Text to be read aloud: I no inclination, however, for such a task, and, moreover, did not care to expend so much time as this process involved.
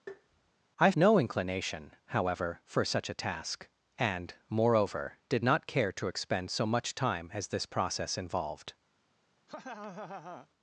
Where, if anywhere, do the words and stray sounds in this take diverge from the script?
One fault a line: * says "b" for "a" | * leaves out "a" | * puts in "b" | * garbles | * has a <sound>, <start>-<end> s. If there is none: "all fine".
* has a tap, 0.1-0.5 s
* has a laugh, 9.5-10.5 s